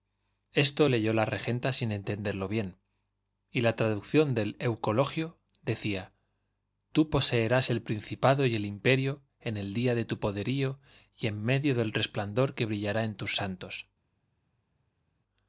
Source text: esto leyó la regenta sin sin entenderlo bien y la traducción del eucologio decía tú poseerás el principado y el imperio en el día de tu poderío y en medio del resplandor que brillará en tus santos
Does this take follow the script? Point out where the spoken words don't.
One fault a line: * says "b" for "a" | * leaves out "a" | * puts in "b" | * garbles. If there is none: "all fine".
* leaves out "sin"